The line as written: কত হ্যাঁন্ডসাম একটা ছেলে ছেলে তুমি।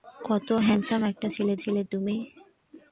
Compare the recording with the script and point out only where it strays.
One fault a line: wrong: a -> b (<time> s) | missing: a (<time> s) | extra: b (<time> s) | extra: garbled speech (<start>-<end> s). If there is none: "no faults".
no faults